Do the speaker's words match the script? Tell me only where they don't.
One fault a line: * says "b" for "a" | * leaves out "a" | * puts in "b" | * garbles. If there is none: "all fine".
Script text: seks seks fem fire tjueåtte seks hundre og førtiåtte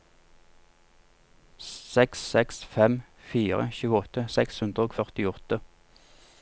all fine